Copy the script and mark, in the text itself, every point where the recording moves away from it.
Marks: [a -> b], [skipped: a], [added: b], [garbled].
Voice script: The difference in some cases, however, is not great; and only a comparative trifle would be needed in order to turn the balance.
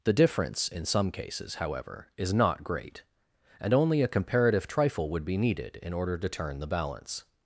The difference in some cases, however, is not great; and only a comparative trifle would be needed in order to turn the balance.